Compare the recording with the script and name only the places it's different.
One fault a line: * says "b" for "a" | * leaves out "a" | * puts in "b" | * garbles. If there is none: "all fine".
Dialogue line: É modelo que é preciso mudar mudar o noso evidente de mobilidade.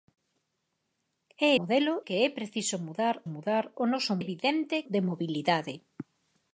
all fine